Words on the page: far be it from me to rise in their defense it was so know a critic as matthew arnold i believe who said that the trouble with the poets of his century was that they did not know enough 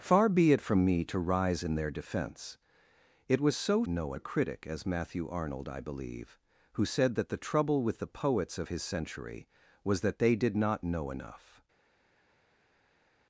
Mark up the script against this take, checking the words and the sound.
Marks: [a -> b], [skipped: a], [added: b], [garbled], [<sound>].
far be it from me to rise in their defense it was so know a critic as matthew arnold i believe who said that the trouble with the poets of his century was that they did not know enough